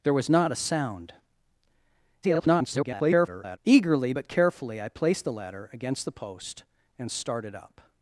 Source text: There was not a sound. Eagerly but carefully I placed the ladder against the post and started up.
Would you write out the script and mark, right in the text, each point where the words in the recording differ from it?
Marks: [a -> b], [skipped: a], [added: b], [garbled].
There was not a sound. [garbled] Eagerly but carefully I placed the ladder against the post and started up.